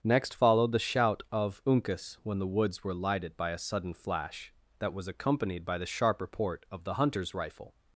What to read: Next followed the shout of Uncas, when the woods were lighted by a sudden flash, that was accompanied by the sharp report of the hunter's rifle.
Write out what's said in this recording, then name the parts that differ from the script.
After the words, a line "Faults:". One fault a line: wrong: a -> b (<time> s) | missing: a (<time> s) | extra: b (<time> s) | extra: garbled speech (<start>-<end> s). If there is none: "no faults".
Next followed the shout of Uncas, when the woods were lighted by a sudden flash, that was accompanied by the sharp report of the hunter's rifle.
Faults:
no faults